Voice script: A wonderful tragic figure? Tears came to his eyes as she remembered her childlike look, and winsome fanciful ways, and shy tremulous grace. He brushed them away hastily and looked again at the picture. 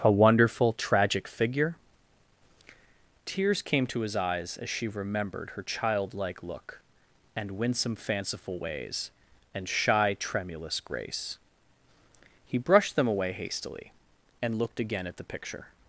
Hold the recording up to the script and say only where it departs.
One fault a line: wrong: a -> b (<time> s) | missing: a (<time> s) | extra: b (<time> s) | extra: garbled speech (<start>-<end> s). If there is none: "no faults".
no faults